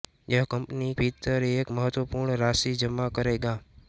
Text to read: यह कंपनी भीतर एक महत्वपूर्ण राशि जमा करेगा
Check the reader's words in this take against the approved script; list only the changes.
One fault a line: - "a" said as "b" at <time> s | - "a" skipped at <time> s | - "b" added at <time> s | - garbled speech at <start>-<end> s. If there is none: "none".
none